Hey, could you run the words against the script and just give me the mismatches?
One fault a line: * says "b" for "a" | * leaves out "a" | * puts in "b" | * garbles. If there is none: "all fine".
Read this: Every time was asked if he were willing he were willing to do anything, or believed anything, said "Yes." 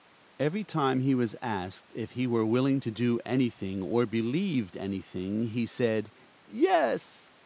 * puts in "he"
* leaves out "he were willing"
* puts in "he"